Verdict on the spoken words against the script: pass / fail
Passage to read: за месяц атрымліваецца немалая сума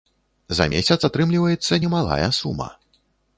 pass